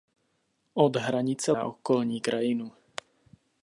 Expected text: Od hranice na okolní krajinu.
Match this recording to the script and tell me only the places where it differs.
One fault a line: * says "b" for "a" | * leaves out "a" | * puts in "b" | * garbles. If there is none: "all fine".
all fine